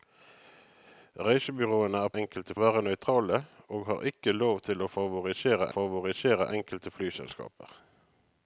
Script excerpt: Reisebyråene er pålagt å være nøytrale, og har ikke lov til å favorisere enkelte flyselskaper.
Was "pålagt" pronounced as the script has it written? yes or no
no